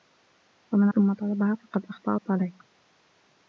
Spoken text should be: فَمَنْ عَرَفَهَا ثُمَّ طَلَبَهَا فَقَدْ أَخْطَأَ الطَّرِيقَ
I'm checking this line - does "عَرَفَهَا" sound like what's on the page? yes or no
no